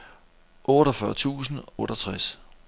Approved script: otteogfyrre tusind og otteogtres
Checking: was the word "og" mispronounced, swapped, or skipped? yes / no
yes